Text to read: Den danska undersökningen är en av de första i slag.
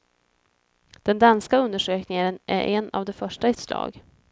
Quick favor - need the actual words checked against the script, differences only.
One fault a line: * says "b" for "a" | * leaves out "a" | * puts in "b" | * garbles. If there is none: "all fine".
all fine